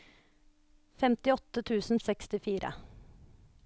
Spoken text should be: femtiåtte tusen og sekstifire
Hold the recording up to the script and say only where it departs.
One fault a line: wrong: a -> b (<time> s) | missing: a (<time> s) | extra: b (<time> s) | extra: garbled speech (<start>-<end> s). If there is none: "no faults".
no faults